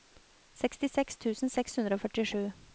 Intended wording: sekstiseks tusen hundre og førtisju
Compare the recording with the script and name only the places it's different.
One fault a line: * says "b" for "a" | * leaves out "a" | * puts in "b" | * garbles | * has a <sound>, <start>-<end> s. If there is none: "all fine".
* puts in "seks"